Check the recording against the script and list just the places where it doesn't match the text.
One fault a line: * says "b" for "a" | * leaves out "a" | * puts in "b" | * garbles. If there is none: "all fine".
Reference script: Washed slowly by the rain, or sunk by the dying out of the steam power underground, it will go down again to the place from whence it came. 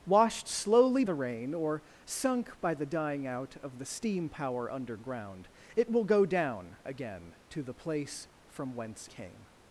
* leaves out "by"
* leaves out "it"